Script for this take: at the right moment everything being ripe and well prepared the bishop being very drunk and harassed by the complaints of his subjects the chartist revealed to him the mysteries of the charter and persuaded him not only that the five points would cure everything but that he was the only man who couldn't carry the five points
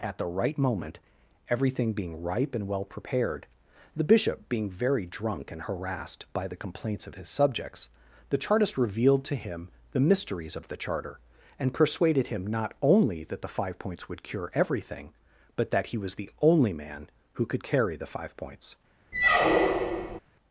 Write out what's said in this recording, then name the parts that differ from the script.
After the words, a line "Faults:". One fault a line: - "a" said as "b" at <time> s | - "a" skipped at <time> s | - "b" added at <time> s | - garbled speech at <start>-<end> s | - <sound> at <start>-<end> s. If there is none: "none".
at the right moment everything being ripe and well prepared the bishop being very drunk and harassed by the complaints of his subjects the chartist revealed to him the mysteries of the charter and persuaded him not only that the five points would cure everything but that he was the only man who could carry the five points
Faults:
- "couldn't" said as "could" at 17.4 s
- squeak at 19.1-20.2 s